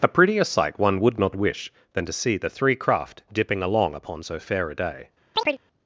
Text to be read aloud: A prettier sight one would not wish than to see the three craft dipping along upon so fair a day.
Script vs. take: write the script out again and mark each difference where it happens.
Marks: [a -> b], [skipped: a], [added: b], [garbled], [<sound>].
A prettier sight one would not wish than to see the three craft dipping along upon so fair a day. [chirp]